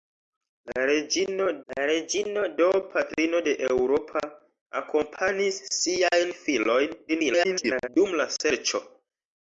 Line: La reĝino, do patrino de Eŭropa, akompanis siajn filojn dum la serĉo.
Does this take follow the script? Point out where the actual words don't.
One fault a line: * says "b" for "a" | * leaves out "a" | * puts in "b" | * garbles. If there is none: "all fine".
* puts in "la reĝino"
* garbles